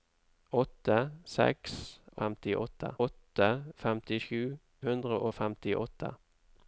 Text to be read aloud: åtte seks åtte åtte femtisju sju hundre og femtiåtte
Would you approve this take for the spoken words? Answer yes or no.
no